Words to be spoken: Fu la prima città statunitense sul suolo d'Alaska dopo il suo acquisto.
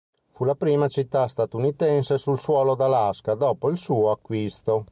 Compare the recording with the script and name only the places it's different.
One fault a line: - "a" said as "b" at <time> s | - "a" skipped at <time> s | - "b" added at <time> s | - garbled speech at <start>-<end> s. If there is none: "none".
none